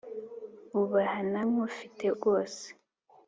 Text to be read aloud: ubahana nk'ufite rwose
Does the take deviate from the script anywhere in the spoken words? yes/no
no